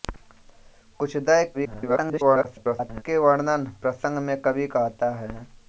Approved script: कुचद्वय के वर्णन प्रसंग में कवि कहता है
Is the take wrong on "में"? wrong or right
right